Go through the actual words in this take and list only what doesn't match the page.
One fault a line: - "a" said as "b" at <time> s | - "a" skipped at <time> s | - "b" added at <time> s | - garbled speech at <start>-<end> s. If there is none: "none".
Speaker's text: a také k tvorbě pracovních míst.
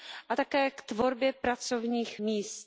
none